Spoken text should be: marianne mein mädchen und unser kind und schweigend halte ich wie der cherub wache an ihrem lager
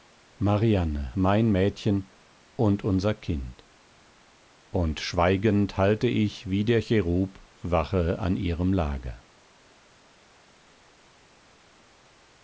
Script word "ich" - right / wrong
right